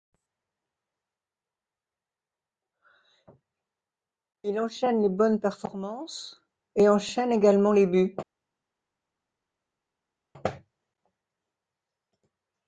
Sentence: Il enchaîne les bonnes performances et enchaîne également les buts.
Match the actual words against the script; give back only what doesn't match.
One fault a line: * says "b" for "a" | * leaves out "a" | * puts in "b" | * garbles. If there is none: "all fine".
all fine